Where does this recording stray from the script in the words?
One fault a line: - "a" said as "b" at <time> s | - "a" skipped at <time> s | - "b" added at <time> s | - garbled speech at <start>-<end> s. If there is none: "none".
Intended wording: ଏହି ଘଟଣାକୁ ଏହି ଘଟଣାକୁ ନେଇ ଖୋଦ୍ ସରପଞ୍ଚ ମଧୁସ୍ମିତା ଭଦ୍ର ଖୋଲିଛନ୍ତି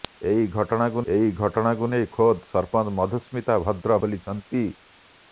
none